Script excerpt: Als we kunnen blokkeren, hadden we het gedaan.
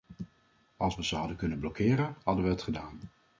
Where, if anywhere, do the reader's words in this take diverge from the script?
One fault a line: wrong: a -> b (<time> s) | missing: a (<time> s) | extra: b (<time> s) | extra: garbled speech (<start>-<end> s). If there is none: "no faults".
extra: ze hadden (1.0 s)